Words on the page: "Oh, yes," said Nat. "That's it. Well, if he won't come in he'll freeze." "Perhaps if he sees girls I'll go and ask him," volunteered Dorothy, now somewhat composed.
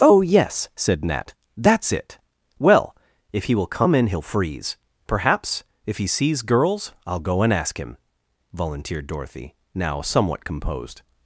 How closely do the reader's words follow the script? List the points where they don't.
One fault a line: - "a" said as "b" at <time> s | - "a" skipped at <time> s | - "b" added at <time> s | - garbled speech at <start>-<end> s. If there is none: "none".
- "won't" said as "will" at 3.5 s